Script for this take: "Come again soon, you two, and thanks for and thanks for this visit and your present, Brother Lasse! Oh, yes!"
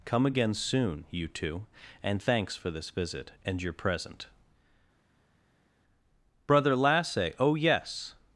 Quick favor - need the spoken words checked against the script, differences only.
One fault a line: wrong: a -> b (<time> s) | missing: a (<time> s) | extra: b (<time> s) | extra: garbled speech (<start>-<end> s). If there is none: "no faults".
missing: and thanks for (2.7 s)